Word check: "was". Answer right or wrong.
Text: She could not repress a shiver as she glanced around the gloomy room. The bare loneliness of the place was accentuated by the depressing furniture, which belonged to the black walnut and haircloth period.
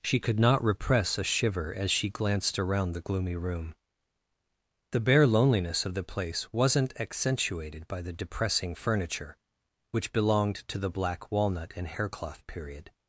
wrong